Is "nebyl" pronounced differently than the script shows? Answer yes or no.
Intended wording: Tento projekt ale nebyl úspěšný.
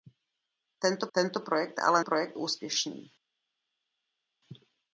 yes